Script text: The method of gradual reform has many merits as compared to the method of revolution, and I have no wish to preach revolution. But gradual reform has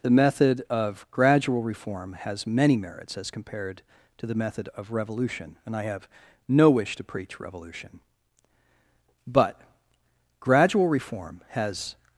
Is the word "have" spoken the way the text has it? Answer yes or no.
yes